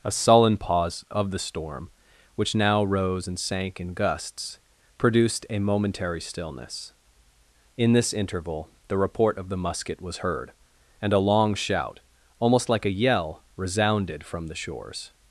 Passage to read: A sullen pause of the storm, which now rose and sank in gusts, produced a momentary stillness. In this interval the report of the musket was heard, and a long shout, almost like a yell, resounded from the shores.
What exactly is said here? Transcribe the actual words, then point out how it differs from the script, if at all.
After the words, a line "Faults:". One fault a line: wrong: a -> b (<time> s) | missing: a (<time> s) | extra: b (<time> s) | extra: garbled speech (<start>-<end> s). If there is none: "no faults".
A sullen pause of the storm, which now rose and sank in gusts, produced a momentary stillness. In this interval the report of the musket was heard, and a long shout, almost like a yell, resounded from the shores.
Faults:
no faults